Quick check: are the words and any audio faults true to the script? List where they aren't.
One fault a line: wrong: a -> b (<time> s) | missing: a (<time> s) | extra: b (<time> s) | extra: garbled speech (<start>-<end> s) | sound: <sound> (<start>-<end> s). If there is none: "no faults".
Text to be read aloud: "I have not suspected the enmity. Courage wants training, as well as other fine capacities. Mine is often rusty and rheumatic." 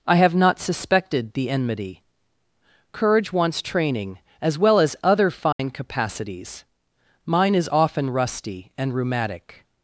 sound: dropout (5.5-5.6 s)